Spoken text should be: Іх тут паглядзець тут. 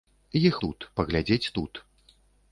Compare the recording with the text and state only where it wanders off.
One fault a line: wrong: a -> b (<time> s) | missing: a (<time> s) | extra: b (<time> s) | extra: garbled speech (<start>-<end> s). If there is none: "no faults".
no faults